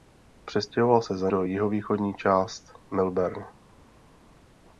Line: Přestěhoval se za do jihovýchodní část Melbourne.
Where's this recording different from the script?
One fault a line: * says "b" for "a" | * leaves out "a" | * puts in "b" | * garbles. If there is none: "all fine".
all fine